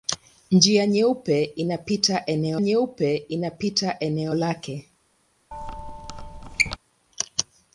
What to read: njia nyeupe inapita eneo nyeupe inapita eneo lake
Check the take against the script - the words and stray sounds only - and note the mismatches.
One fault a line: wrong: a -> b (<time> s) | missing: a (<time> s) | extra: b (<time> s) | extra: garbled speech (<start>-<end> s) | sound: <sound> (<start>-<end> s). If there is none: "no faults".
sound: squeak (5.5-6.8 s)